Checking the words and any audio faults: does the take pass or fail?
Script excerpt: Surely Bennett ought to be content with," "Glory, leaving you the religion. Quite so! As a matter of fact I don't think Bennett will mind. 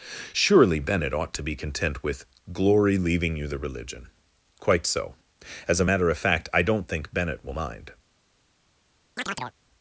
fail